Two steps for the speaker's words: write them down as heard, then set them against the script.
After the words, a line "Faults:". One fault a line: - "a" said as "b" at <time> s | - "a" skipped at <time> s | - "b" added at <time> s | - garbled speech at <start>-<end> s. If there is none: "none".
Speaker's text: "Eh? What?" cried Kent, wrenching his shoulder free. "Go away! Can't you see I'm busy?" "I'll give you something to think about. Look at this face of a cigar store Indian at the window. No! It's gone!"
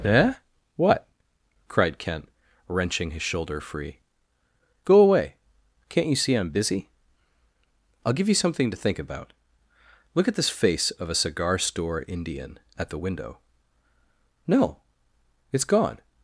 "Eh? What?" cried Kent, wrenching his shoulder free. "Go away! Can't you see I'm busy?" "I'll give you something to think about. Look at this face of a cigar store Indian at the window. No! It's gone!"
Faults:
none